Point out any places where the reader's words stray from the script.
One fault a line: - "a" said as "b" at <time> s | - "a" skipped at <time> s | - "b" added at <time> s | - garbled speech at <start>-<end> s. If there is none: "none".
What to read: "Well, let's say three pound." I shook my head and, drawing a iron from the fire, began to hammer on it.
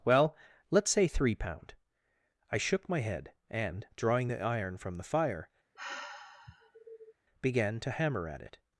- "a" said as "the" at 4.3 s
- "on" said as "at" at 8.3 s